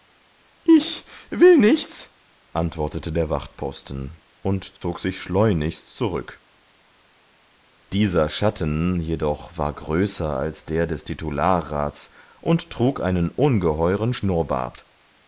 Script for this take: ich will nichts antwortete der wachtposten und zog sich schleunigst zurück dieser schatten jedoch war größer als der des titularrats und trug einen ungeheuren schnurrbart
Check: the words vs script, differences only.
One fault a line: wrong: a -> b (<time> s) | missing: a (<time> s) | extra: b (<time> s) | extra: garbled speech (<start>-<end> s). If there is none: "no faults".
no faults